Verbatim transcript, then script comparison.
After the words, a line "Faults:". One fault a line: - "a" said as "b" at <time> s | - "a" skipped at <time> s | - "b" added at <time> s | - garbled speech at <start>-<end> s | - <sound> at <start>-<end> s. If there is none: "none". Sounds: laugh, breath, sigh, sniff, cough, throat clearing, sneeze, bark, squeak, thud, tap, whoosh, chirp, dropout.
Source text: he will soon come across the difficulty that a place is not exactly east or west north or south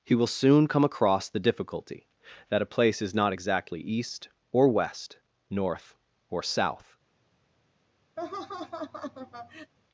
he will soon come across the difficulty that a place is not exactly east or west north or south
Faults:
- laugh at 8.2-9.7 s